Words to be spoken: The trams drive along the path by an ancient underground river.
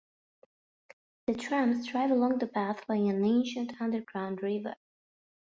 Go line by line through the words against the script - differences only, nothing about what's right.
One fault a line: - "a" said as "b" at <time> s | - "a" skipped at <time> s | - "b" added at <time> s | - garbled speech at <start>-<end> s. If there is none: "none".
none